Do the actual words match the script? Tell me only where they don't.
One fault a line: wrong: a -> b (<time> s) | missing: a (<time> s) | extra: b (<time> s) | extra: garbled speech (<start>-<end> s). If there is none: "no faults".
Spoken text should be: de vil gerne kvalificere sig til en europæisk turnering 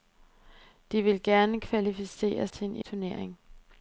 missing: sig (2.5 s)
missing: europæisk (2.8 s)